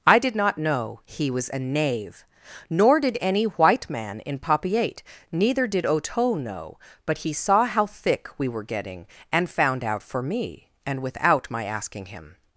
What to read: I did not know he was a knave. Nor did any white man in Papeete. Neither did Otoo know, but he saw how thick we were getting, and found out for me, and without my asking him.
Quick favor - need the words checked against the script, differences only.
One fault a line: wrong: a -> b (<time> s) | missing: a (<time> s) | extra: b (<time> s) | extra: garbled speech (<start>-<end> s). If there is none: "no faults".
no faults